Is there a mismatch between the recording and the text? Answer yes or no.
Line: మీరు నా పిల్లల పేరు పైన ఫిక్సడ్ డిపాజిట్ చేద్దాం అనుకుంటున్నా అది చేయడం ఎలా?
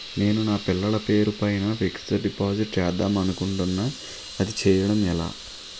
yes